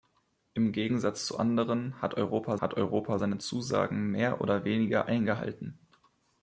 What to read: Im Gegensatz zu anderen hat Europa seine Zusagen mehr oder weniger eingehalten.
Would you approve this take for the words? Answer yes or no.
no